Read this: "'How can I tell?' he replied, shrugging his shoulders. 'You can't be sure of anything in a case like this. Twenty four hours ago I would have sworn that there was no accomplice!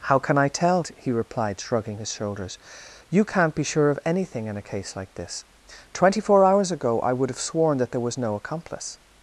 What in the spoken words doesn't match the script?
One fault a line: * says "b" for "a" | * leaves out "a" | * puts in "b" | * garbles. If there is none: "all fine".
all fine